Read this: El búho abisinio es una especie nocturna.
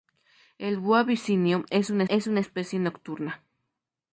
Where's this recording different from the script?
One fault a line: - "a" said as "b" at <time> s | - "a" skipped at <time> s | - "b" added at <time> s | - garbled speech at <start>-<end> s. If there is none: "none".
- "es una" added at 2.1 s